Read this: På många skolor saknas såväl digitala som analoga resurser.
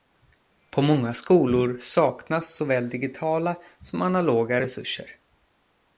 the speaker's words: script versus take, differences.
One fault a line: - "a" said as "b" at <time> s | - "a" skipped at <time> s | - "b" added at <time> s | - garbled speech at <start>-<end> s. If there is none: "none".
none